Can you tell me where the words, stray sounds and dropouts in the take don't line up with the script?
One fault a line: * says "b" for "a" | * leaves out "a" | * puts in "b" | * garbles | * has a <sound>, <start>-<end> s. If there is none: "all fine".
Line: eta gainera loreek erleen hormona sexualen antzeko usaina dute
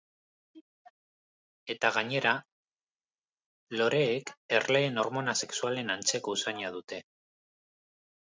all fine